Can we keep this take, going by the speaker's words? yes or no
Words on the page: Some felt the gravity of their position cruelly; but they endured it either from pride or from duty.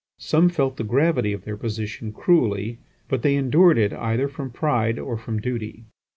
yes